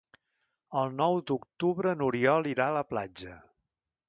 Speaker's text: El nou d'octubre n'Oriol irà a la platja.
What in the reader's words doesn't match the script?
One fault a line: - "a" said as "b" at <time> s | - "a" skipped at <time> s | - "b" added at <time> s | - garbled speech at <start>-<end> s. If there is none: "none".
none